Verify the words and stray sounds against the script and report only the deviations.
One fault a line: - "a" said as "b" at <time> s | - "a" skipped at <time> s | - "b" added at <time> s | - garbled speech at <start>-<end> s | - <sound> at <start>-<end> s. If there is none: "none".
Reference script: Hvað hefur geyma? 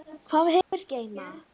- dropout at 0.6-0.7 s